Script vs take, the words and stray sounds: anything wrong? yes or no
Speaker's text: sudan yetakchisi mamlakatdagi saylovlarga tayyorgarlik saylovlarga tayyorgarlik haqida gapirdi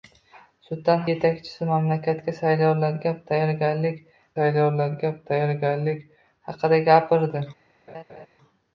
yes